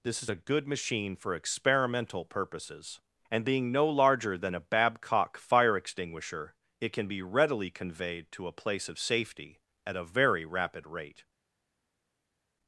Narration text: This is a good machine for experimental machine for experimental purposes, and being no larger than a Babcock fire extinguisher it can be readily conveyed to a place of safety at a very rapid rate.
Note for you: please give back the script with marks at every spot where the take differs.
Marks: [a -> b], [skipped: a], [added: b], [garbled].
This is a good machine for experimental [skipped: machine for experimental] purposes, and being no larger than a Babcock fire extinguisher it can be readily conveyed to a place of safety at a very rapid rate.